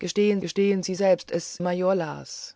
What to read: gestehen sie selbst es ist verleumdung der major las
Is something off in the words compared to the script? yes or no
yes